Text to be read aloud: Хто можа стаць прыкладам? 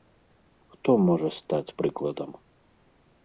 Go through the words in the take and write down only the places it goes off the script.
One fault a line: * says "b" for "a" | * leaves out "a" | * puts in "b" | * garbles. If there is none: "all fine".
all fine